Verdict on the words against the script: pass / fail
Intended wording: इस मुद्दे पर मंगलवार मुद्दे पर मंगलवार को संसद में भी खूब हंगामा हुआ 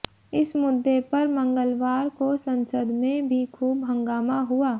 fail